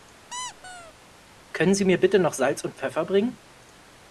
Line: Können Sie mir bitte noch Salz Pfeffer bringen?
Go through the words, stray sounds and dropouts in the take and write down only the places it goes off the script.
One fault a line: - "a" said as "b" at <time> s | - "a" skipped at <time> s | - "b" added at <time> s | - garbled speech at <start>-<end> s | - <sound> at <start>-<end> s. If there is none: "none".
- squeak at 0.3-0.9 s
- "und" added at 2.6 s